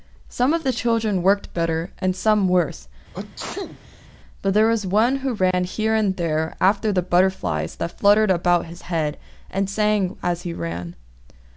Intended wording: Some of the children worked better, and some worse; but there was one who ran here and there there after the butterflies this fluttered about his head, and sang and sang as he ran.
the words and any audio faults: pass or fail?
fail